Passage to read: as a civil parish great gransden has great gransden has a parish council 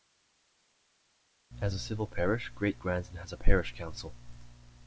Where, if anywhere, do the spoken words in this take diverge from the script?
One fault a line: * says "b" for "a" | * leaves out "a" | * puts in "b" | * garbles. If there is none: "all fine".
* leaves out "great gransden has"